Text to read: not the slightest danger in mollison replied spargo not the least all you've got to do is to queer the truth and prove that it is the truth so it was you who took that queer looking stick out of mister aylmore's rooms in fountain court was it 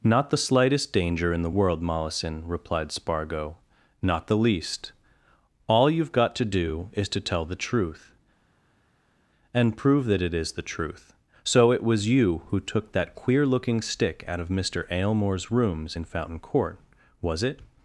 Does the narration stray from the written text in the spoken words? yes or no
yes